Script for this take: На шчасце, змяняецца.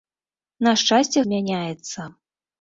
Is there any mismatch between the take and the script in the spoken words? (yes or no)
no